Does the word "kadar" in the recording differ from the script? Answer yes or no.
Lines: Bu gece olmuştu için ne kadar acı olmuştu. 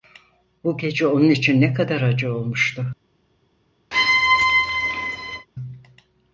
no